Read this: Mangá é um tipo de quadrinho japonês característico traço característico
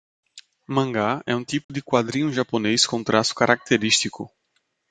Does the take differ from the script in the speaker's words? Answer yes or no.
yes